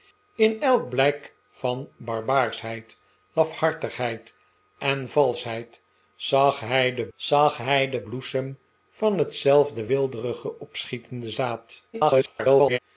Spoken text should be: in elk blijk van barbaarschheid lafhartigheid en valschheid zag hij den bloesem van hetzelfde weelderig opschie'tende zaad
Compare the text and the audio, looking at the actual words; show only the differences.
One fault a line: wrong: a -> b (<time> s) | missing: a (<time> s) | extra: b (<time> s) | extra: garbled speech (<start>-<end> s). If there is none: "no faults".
extra: zag hij den (7.2 s)
extra: garbled speech (11.9-12.8 s)